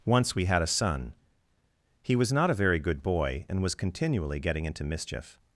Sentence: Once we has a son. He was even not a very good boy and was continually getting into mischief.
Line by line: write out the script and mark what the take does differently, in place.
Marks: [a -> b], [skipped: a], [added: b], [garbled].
Once we [has -> had] a son. He was [skipped: even] not a very good boy and was continually getting into mischief.